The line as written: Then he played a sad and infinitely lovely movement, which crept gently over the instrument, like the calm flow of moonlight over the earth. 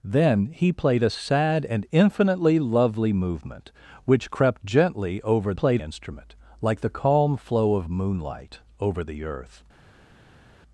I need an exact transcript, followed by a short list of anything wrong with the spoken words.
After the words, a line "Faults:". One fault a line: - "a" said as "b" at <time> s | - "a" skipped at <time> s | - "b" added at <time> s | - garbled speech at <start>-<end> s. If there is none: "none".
Then he played a sad and infinitely lovely movement, which crept gently over played instrument, like the calm flow of moonlight over the earth.
Faults:
- "the" said as "played" at 5.5 s